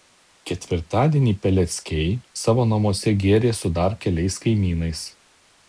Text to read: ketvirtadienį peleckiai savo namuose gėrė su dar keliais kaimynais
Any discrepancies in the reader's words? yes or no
no